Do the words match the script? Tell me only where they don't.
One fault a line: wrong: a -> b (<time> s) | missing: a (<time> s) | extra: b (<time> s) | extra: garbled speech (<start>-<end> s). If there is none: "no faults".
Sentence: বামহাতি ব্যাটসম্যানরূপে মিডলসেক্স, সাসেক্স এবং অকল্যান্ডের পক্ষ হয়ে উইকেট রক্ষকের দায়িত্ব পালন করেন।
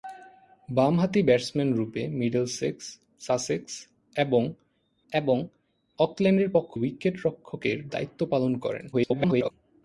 extra: এবং (5.1 s)
missing: হয়ে (6.7 s)
extra: garbled speech (8.9-9.5 s)